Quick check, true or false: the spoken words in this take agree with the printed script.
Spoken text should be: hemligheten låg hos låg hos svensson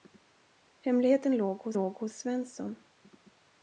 true